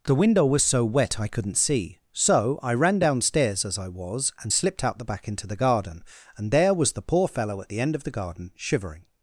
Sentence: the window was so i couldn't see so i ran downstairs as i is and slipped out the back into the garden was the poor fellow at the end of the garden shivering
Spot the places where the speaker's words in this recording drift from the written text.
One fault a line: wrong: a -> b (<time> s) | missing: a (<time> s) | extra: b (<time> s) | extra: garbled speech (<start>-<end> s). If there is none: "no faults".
extra: wet (0.8 s)
wrong: is -> was (3.9 s)
extra: and there (6.4 s)